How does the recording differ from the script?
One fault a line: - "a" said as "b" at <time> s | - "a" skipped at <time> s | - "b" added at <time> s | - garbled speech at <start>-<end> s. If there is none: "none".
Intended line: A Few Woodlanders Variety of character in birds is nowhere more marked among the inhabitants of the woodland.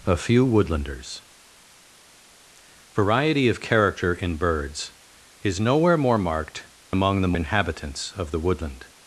none